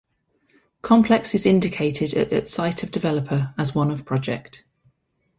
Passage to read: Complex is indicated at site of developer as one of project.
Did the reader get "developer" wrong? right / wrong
right